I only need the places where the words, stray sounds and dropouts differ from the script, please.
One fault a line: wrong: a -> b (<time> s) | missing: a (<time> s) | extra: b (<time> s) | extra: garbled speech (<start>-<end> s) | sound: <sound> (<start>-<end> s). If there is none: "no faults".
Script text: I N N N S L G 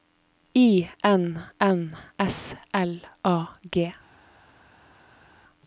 missing: N (1.9 s)
extra: A (3.2 s)